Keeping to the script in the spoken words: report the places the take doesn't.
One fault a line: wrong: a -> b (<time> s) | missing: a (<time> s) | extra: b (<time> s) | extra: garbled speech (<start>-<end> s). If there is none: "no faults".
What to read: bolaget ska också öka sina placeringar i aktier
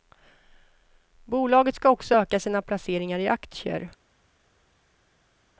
no faults